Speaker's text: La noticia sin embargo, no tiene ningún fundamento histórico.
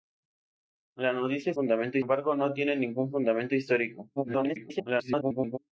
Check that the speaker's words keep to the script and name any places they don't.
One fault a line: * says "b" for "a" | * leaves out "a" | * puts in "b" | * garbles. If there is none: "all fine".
* says "fundamento" for "sin"
* garbles